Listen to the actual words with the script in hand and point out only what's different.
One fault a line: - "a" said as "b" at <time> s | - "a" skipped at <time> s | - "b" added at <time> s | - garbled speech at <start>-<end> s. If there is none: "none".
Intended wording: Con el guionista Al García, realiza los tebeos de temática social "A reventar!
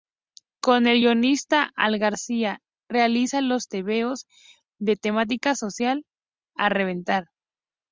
none